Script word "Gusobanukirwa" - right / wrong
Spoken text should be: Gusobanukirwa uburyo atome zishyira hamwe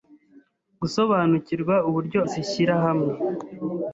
right